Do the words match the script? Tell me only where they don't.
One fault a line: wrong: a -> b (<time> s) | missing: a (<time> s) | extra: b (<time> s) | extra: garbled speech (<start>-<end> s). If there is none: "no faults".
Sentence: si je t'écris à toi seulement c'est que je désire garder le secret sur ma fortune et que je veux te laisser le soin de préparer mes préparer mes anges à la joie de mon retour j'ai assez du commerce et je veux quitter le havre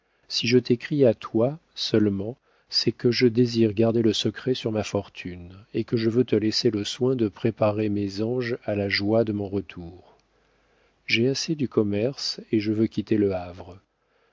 missing: préparer mes (8.2 s)